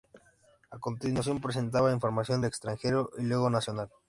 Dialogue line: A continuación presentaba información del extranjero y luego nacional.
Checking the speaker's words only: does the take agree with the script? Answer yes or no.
no